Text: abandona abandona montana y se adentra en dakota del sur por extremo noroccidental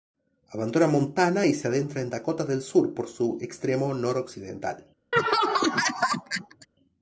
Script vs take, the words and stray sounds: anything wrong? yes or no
yes